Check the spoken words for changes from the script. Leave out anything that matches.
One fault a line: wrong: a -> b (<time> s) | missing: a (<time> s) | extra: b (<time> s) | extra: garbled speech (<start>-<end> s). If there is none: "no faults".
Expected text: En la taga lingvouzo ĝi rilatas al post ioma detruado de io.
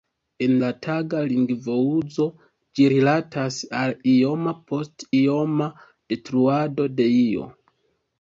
extra: ioma (4.1 s)